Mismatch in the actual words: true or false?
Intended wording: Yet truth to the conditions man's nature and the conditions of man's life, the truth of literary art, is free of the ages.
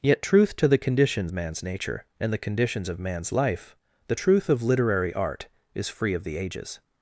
false